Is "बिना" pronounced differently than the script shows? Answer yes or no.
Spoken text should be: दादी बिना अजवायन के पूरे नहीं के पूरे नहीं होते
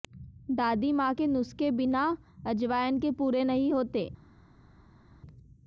yes